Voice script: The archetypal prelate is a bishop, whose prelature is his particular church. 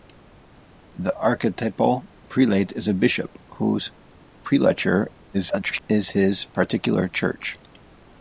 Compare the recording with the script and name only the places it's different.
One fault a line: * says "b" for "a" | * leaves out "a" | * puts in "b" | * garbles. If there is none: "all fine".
* garbles